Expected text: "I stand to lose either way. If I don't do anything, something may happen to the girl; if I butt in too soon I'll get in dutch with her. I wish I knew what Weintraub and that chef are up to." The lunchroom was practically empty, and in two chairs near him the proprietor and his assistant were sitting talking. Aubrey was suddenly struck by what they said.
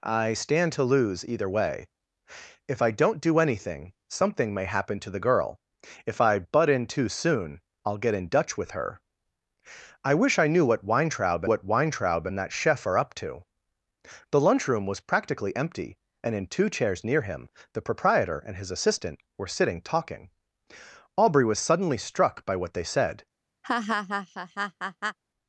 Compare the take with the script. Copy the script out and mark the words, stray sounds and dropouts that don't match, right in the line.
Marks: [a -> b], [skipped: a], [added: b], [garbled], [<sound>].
"I stand to lose either way. If I don't do anything, something may happen to the girl; if I butt in too soon I'll get in dutch with her. I wish I knew what Weintraub [added: what Weintraub] and that chef are up to." The lunchroom was practically empty, and in two chairs near him the proprietor and his assistant were sitting talking. Aubrey was suddenly struck by what they said. [laugh]